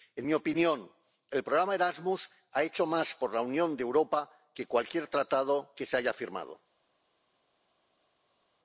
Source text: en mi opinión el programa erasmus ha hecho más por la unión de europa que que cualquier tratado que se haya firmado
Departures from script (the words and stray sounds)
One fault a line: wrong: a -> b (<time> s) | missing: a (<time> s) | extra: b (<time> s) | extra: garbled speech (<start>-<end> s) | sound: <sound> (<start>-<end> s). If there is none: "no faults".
missing: que (4.7 s)